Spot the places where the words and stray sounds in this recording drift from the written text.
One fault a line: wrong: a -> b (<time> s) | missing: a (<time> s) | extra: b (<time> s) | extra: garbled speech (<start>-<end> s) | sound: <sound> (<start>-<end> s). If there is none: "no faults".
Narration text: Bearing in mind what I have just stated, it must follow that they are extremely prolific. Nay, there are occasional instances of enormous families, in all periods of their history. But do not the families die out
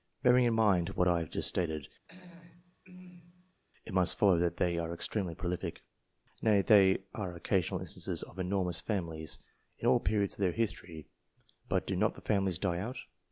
sound: throat clearing (2.0-3.6 s)